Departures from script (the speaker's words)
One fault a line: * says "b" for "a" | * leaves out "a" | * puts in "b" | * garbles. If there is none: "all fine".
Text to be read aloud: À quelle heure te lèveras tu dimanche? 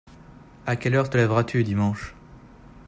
all fine